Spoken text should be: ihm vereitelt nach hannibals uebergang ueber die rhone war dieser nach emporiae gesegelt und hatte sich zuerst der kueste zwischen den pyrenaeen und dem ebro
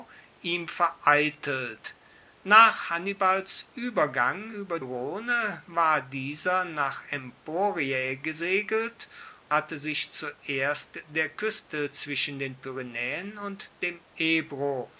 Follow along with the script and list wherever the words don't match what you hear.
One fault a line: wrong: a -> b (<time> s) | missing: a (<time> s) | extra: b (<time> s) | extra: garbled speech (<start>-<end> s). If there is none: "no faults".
missing: die (4.8 s)
missing: und (9.1 s)